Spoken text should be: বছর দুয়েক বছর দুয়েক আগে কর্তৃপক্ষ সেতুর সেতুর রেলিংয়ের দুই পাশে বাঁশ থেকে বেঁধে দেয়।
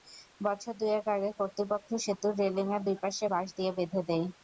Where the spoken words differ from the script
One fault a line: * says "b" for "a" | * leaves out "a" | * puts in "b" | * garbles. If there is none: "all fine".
* leaves out "বছর দুয়েক"
* leaves out "সেতুর"
* says "দিয়ে" for "থেকে"